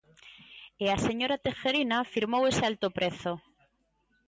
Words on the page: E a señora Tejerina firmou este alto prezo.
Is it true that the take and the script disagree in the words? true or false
true